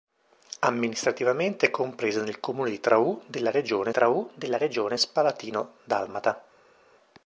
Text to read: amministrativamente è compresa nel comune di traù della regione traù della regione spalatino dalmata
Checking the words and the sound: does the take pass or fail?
pass